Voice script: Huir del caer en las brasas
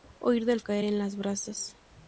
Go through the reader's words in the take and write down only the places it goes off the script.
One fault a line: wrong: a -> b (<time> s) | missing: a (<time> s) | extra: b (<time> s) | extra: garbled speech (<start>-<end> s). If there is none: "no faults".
no faults